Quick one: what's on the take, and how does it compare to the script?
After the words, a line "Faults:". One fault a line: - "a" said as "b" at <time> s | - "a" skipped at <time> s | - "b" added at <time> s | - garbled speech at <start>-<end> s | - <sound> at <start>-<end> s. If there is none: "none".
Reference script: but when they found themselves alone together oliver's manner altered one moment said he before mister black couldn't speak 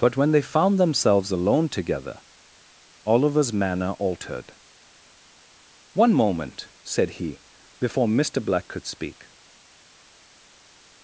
but when they found themselves alone together oliver's manner altered one moment said he before mister black could speak
Faults:
- "couldn't" said as "could" at 8.7 s